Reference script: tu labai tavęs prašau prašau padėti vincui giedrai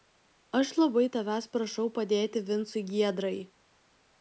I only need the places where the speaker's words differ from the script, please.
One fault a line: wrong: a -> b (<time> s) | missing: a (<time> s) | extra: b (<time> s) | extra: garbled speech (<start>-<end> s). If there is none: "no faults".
wrong: tu -> aš (0.6 s)
missing: prašau (1.9 s)